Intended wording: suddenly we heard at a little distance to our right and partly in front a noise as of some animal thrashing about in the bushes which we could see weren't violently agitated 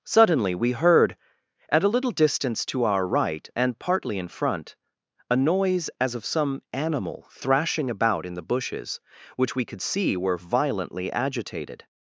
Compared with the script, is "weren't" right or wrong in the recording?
wrong